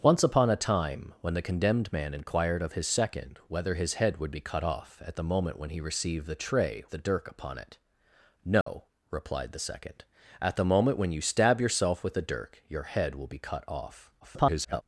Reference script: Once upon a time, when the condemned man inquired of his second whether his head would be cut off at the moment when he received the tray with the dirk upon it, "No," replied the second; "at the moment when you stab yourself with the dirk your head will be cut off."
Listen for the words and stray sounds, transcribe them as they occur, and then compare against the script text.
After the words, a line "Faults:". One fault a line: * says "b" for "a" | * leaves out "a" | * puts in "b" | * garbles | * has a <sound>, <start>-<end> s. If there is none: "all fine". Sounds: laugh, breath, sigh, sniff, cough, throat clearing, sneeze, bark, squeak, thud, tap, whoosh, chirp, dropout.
Once upon a time, when the condemned man inquired of his second whether his head would be cut off at the moment when he received the tray the dirk upon it, "No," replied the second; "at the moment when you stab yourself with the dirk your head will be cut off." [garbled]
Faults:
* leaves out "with"
* has a dropout, 8.6-8.7 s
* garbles